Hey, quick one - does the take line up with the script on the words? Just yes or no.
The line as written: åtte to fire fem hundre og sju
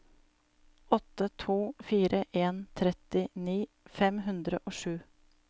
no